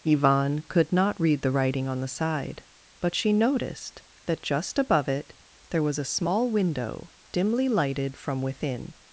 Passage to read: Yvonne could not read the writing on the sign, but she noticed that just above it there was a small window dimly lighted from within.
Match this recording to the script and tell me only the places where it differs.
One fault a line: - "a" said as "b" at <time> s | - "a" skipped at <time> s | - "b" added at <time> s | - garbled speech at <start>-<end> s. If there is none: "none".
- "sign" said as "side" at 2.1 s